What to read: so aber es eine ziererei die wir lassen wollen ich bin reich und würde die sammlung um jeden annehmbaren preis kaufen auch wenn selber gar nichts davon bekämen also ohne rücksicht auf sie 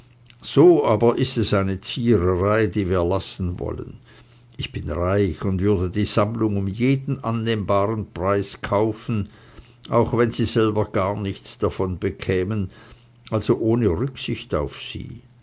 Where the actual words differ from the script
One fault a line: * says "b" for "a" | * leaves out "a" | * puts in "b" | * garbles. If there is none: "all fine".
* puts in "ist"
* puts in "sie"